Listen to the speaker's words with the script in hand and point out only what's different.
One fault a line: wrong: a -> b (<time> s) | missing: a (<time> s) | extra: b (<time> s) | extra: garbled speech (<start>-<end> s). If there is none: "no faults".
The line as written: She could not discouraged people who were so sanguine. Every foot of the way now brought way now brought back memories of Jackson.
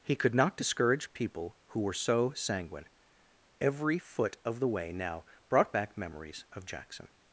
wrong: She -> He (0.0 s)
wrong: discouraged -> discourage (0.6 s)
missing: way now brought (5.7 s)